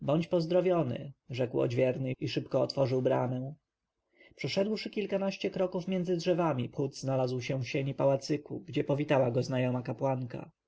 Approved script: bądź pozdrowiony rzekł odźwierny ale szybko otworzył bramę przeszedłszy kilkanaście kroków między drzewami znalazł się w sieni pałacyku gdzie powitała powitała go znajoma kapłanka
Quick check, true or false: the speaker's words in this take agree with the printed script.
false